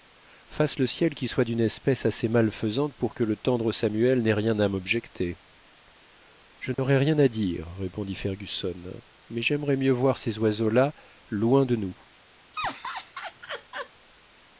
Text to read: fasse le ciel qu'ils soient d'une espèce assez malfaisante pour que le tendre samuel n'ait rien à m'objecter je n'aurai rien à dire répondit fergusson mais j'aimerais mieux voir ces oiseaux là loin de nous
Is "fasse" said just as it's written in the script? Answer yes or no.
yes